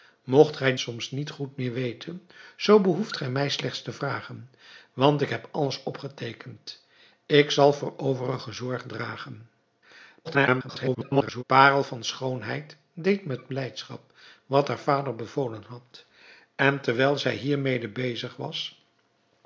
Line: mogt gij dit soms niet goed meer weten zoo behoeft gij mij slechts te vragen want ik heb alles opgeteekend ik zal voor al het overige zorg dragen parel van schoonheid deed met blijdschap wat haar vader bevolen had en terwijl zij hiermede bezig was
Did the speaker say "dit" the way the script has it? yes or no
no